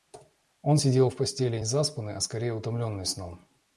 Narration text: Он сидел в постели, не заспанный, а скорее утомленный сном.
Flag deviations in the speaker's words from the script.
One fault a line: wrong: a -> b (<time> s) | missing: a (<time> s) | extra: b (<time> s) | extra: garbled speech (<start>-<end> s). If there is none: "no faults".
missing: не (1.6 s)